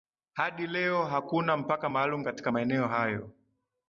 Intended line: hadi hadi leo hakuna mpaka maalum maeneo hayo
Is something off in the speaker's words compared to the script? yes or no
yes